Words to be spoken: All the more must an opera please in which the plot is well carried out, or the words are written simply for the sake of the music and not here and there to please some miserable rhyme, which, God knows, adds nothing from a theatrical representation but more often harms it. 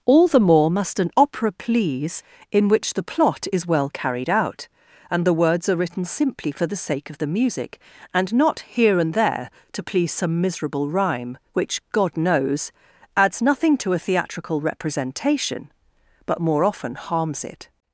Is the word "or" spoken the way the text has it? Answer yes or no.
no